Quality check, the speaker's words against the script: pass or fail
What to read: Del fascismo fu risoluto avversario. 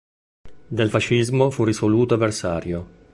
pass